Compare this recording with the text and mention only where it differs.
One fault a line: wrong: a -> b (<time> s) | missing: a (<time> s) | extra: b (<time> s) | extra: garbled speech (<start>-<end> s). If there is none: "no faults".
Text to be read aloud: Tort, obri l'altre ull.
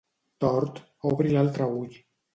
no faults